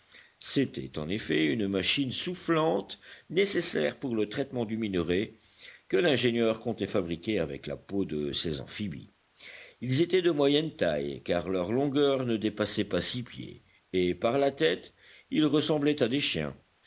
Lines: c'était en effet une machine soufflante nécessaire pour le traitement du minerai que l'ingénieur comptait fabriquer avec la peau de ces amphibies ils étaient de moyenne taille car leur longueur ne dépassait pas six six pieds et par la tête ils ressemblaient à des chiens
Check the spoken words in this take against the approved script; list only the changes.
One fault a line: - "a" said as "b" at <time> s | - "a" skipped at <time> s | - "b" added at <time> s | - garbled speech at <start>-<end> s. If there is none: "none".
- "six" skipped at 13.2 s